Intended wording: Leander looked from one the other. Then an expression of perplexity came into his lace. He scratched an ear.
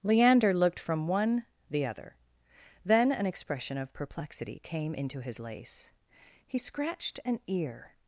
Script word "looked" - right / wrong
right